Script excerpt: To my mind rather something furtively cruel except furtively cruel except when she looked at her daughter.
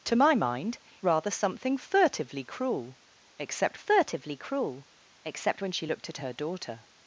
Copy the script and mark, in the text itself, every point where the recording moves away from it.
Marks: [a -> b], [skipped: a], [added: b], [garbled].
To my mind rather something furtively cruel except furtively cruel except when she looked at her daughter.